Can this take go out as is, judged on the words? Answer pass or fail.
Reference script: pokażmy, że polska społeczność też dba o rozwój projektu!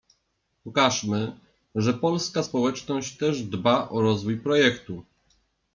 pass